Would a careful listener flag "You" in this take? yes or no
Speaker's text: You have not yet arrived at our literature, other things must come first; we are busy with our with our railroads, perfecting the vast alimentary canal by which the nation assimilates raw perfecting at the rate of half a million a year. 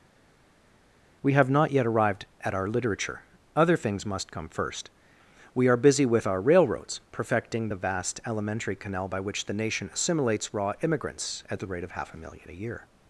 yes